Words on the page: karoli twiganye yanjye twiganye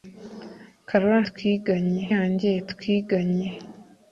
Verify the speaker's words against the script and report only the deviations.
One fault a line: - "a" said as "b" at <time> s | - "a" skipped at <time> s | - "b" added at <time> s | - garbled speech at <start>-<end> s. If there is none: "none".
none